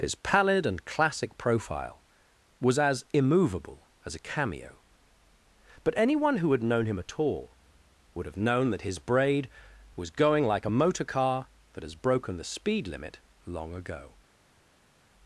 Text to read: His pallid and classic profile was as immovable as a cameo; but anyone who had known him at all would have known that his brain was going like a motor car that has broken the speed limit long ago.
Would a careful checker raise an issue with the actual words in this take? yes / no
yes